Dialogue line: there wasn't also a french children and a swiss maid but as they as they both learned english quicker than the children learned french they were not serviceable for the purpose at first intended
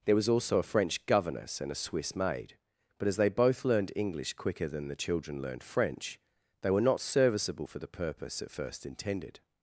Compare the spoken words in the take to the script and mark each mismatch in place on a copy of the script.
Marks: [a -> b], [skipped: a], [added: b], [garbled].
there [wasn't -> was] also a french [children -> governess] and a swiss maid but as they [skipped: as they] both learned english quicker than the children learned french they were not serviceable for the purpose at first intended